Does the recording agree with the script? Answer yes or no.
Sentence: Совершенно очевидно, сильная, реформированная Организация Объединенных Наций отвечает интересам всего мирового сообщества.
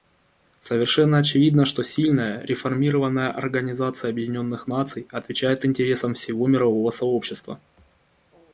no